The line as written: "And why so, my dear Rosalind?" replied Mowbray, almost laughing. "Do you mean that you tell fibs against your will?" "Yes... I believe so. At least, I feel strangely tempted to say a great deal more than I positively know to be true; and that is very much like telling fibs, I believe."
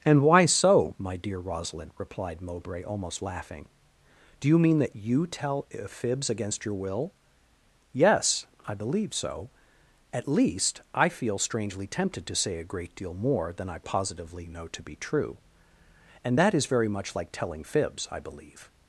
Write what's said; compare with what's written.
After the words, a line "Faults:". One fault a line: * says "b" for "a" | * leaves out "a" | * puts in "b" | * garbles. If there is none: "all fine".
"And why so, my dear Rosalind?" replied Mowbray, almost laughing. "Do you mean that you tell fibs against your will?" "Yes... I believe so. At least, I feel strangely tempted to say a great deal more than I positively know to be true; and that is very much like telling fibs, I believe."
Faults:
all fine